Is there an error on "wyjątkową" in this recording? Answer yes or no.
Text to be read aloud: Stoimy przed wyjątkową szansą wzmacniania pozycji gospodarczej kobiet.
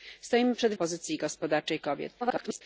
yes